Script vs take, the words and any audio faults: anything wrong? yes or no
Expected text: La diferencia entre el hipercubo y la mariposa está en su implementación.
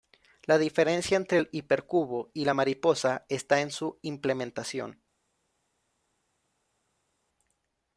no